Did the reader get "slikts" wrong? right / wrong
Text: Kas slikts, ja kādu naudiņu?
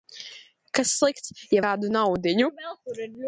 right